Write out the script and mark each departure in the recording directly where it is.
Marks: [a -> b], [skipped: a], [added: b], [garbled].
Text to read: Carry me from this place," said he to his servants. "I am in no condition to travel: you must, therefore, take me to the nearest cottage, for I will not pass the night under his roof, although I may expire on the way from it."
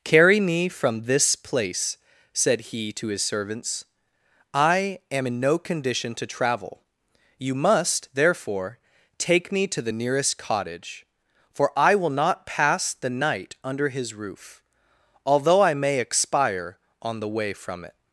Carry me from this place," said he to his servants. "I am in no condition to travel: you must, therefore, take me to the nearest cottage, for I will not pass the night under his roof, although I may expire on the way from it."